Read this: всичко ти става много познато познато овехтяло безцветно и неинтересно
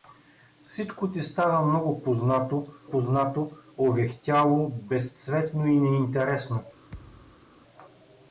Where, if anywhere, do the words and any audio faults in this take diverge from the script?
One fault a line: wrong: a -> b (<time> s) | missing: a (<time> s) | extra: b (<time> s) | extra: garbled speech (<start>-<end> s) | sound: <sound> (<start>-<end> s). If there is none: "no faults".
sound: thud (6.9-7.5 s)